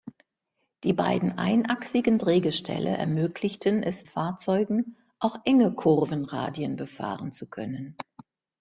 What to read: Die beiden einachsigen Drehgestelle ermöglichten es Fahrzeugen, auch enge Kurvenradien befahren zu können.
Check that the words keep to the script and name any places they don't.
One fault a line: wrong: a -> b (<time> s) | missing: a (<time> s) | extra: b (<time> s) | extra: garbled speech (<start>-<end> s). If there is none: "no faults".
no faults